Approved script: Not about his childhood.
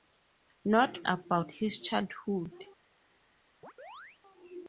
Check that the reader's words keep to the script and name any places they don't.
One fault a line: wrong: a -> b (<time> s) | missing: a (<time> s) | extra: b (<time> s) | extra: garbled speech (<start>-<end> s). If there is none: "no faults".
no faults